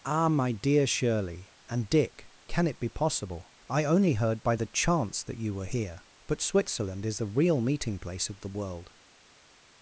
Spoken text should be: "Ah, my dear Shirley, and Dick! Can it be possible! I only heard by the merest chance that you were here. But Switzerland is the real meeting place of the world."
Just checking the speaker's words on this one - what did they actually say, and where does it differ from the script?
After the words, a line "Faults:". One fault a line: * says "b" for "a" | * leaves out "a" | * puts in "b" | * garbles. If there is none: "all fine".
"Ah, my dear Shirley, and Dick! Can it be possible! I only heard by the chance that you were here. But Switzerland is the real meeting place of the world."
Faults:
* leaves out "merest"